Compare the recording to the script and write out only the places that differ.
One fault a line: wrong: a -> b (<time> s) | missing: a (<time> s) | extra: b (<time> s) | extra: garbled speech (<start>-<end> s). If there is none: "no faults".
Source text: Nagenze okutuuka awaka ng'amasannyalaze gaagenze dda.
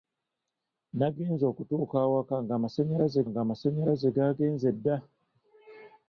extra: ng'amasannyalaze (3.3 s)